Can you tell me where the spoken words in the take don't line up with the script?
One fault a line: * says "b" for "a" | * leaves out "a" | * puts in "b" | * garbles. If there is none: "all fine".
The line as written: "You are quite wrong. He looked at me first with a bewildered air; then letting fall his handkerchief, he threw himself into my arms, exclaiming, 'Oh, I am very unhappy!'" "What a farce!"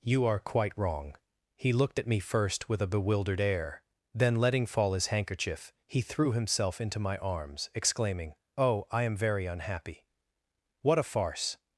all fine